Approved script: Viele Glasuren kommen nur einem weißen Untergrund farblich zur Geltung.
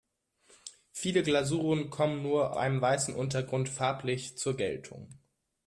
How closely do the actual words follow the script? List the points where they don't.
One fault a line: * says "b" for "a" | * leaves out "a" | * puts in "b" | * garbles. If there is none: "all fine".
all fine